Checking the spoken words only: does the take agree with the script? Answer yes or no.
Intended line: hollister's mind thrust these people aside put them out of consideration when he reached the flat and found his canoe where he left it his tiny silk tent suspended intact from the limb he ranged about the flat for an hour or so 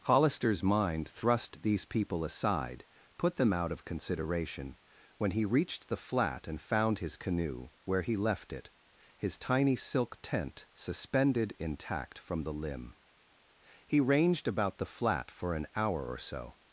yes